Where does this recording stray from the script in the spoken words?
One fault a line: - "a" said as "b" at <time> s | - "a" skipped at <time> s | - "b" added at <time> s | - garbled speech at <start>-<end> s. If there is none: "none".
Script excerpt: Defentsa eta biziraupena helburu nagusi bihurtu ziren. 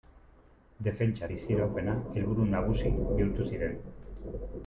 - "eta" skipped at 1.3 s